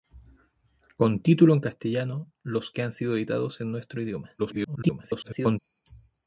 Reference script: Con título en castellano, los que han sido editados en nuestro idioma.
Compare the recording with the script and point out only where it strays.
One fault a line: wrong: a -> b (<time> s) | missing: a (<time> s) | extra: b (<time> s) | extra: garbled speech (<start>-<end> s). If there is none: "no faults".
extra: garbled speech (4.4-5.6 s)